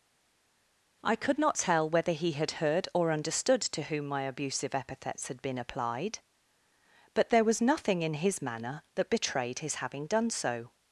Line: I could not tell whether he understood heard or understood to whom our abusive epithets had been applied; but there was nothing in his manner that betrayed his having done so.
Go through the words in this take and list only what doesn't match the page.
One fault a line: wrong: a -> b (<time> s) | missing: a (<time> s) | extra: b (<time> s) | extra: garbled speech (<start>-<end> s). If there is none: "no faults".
wrong: understood -> had (2.3 s)
wrong: our -> my (4.1 s)